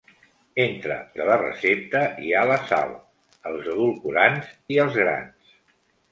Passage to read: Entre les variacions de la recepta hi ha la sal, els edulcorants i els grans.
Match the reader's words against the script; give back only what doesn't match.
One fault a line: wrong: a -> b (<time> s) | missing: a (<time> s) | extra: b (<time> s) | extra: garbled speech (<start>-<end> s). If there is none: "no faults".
missing: les variacions (0.9 s)